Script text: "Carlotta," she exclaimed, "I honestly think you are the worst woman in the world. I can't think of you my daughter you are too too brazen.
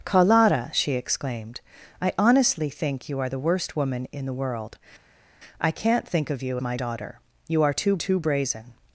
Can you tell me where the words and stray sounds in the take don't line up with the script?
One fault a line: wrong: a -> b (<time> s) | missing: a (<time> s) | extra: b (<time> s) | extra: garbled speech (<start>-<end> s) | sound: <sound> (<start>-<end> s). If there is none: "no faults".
no faults